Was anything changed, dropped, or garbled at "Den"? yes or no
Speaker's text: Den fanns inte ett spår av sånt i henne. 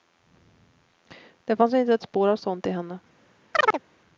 yes